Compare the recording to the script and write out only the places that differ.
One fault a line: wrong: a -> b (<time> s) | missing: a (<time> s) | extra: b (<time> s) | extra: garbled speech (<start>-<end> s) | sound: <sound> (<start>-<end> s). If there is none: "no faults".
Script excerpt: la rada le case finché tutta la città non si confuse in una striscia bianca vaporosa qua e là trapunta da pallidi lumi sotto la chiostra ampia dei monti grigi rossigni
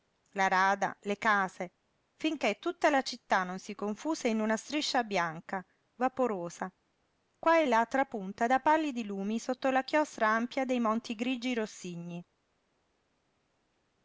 no faults